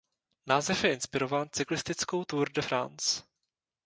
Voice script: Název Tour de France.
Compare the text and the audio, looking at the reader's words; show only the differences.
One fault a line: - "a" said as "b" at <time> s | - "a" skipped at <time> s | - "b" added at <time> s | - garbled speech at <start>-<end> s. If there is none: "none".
- "je inspirován cyklistickou" added at 0.8 s